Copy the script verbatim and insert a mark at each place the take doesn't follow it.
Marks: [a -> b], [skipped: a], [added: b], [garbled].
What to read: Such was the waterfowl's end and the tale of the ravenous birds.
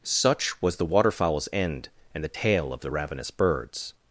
Such was the waterfowl's end and the tale of the ravenous birds.